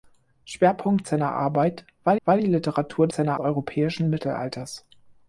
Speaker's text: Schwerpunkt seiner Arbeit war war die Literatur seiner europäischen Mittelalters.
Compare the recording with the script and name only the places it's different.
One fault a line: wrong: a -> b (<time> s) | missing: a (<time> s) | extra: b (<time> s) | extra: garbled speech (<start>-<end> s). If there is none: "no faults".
no faults